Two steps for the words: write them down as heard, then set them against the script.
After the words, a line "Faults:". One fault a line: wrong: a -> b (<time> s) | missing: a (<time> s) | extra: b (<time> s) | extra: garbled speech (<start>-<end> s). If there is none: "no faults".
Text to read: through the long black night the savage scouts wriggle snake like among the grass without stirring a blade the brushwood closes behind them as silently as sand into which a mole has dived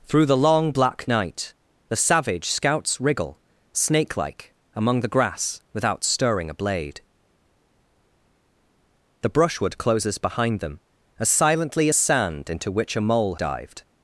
through the long black night the savage scouts wriggle snake like among the grass without stirring a blade the brushwood closes behind them as silently as sand into which a mole dived
Faults:
missing: has (13.3 s)